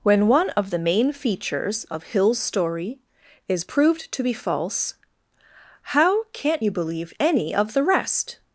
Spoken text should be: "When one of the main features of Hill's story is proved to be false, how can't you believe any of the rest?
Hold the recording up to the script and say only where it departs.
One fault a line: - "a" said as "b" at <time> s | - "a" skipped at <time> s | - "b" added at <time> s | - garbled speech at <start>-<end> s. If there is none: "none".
none